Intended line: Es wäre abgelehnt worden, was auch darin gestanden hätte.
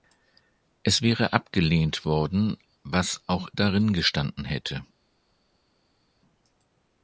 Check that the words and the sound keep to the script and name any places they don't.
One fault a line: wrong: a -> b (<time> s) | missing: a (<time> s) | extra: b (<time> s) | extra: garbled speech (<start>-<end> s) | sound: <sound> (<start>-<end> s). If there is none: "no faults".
no faults